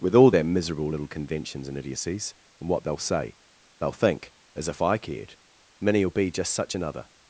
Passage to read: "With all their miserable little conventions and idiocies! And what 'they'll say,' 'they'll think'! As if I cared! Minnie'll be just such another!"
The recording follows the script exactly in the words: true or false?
true